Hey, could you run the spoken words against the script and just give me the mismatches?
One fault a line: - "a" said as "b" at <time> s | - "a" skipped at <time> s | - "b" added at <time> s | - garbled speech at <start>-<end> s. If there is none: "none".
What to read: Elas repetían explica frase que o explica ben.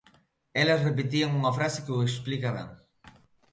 - "explica" said as "unha" at 1.4 s